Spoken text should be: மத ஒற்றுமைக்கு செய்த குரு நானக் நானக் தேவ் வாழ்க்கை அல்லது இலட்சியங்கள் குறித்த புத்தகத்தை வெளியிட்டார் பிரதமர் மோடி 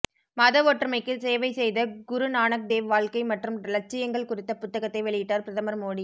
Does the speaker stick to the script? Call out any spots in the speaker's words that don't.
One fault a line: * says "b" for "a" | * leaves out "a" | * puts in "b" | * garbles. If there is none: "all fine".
* puts in "சேவை"
* leaves out "நானக்"
* says "மற்றும்" for "அல்லது"